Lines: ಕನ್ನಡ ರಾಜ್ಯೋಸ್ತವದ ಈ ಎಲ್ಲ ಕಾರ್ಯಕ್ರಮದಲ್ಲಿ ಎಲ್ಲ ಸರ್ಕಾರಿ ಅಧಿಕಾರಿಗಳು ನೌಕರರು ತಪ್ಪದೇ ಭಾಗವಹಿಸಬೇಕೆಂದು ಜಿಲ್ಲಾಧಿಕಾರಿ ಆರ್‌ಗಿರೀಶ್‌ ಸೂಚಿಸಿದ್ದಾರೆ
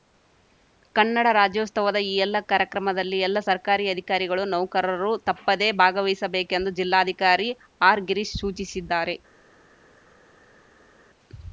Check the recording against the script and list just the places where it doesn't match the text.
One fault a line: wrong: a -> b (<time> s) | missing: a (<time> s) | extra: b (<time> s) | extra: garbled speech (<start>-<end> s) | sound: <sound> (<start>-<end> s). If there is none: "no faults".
no faults